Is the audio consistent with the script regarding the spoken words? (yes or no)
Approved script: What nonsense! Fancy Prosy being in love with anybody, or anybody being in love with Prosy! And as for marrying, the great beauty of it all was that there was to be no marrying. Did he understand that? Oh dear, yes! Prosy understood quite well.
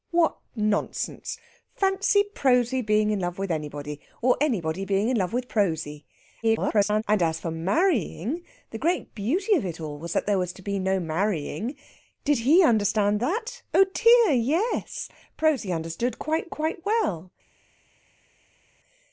no